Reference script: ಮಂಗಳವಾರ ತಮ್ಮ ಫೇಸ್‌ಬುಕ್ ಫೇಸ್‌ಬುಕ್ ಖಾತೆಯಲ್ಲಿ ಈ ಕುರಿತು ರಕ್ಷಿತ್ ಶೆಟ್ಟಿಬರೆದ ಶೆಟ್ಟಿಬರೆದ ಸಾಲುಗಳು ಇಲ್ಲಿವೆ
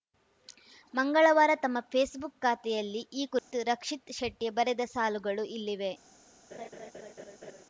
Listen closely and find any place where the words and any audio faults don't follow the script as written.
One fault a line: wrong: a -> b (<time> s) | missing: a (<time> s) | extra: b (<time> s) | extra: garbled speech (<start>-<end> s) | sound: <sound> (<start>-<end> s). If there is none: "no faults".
missing: ಫೇಸ್‌ಬುಕ್ (2.4 s)
sound: dropout (3.4-3.5 s)
missing: ಶೆಟ್ಟಿಬರೆದ (4.8 s)
sound: laugh (6.5-7.7 s)